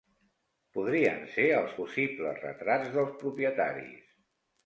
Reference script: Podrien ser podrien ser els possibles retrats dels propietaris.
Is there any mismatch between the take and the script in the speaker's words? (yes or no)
yes